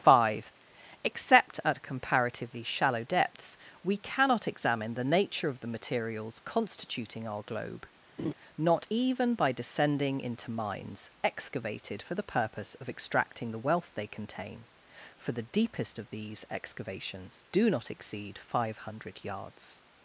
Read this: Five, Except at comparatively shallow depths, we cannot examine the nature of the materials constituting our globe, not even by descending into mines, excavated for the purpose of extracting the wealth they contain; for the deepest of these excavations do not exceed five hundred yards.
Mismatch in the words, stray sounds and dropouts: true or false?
true